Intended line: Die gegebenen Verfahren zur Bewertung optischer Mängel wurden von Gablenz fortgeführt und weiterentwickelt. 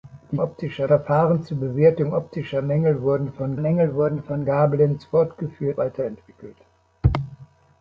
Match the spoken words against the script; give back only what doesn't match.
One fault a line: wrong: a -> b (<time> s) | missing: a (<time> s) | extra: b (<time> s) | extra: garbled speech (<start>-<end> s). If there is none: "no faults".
wrong: gegebenen -> optischer (0.4 s)
extra: Mängel wurden von (3.6 s)
missing: und (5.8 s)